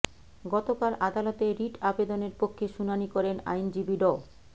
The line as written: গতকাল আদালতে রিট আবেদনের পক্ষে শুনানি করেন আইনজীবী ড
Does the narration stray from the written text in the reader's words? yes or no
no